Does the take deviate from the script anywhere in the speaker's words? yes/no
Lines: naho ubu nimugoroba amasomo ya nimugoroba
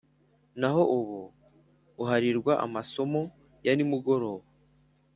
yes